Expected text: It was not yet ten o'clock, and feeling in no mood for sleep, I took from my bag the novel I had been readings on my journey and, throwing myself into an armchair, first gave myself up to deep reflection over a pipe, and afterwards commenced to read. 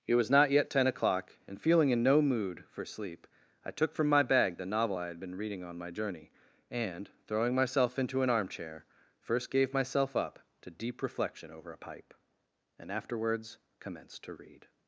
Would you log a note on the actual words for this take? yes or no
yes